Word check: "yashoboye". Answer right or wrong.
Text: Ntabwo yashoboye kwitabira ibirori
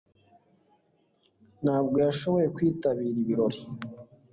right